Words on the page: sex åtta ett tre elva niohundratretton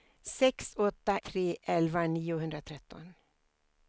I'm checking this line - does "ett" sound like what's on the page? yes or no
no